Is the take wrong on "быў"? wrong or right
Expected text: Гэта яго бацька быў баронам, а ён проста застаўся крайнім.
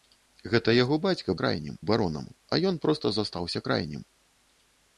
wrong